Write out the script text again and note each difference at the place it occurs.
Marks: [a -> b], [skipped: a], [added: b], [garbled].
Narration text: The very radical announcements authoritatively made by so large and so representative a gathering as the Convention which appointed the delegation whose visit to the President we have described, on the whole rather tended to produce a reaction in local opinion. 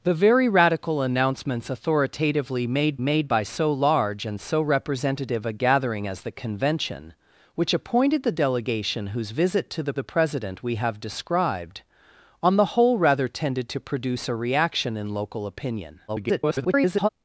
The very radical announcements authoritatively made [added: made] by so large and so representative a gathering as the Convention which appointed the delegation whose visit to the [added: the] President we have described, on the whole rather tended to produce a reaction in local opinion. [garbled]